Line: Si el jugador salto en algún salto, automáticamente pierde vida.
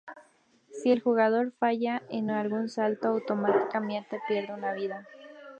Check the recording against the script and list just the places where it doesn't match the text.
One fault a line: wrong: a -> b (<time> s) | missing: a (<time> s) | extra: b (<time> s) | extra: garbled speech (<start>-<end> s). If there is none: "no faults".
wrong: salto -> falla (1.5 s)
extra: una (4.5 s)